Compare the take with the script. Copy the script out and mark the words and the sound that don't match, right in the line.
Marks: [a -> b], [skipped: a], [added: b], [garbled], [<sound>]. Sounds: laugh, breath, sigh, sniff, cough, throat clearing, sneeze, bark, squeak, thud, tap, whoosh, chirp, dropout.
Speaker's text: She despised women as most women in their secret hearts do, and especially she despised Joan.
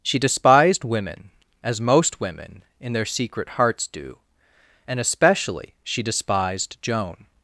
She despised women as most women in their secret hearts do, and especially she despised Joan.